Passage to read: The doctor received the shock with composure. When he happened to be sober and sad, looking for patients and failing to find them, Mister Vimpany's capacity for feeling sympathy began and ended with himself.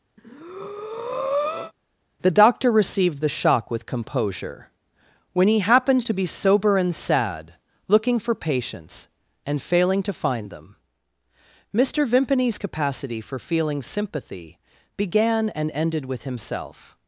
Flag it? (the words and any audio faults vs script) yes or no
yes